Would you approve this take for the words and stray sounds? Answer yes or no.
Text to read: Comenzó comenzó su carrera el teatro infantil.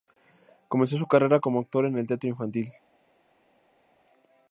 no